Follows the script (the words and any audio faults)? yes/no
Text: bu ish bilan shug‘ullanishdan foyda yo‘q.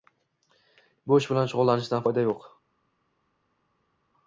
yes